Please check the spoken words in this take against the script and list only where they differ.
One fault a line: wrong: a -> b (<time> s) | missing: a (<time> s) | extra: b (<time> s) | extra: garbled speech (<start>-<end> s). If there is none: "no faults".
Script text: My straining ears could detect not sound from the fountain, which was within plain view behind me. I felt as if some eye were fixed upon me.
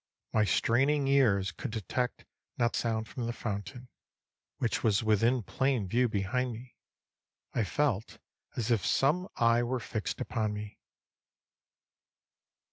no faults